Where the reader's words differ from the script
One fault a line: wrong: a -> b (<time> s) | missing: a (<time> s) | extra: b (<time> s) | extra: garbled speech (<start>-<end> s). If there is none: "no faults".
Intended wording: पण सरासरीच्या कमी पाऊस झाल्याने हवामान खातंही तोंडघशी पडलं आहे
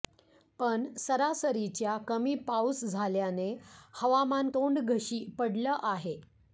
missing: खातंही (4.5 s)